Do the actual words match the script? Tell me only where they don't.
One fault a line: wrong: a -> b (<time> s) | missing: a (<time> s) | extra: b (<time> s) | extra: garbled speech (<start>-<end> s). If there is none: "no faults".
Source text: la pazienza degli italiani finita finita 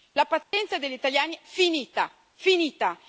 no faults